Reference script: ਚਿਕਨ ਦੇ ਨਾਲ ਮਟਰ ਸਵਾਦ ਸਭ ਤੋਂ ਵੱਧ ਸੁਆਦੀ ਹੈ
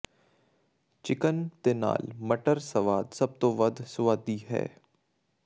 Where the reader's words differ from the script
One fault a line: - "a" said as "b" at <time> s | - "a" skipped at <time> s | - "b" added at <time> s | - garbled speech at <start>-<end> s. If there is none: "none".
none